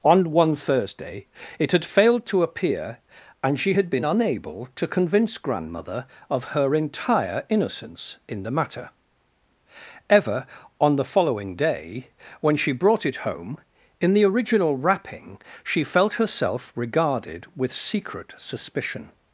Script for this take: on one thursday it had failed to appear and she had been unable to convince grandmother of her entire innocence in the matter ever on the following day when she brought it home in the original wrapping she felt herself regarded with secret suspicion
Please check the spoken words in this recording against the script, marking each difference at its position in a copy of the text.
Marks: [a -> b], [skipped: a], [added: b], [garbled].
on one thursday it had failed to appear and she had been unable to convince grandmother of her entire innocence in the matter ever on the following day when she brought it home in the original wrapping she felt herself regarded with secret suspicion